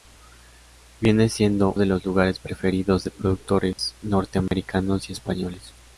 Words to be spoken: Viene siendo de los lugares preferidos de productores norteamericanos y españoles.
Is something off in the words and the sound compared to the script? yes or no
yes